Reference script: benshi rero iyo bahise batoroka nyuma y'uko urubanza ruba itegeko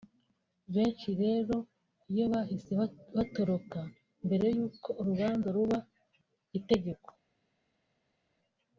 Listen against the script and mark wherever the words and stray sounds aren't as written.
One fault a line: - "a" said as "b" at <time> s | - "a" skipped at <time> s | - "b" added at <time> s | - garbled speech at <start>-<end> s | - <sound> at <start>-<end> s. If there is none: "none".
- "nyuma" said as "mbere" at 4.3 s